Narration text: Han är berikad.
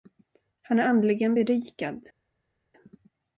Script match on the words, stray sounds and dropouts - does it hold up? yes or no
no